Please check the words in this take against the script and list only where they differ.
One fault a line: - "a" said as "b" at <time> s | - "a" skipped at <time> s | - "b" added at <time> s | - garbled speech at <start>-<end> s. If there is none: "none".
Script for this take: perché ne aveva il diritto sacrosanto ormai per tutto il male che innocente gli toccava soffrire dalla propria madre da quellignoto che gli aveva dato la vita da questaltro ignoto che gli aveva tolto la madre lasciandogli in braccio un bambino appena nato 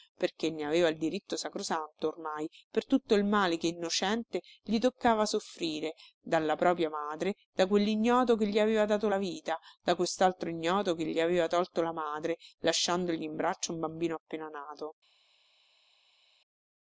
none